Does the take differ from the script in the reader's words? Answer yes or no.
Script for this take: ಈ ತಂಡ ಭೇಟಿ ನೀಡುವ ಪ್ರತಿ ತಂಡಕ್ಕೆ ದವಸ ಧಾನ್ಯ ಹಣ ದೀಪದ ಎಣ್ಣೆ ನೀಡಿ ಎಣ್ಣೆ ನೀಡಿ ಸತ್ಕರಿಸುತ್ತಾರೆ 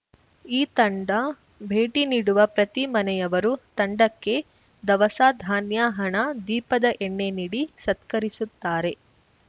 yes